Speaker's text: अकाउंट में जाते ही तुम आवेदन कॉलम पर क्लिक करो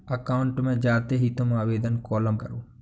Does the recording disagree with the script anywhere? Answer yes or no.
yes